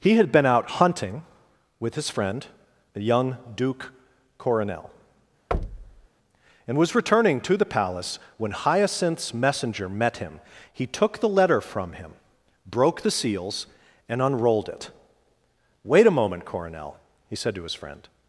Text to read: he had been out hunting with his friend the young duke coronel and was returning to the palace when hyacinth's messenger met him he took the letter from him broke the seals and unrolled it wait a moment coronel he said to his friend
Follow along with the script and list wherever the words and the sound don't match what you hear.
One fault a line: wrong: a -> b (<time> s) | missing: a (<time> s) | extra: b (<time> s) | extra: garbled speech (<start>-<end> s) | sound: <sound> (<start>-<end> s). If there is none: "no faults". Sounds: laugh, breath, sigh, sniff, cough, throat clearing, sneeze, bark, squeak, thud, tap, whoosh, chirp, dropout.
sound: thud (5.5-6.1 s)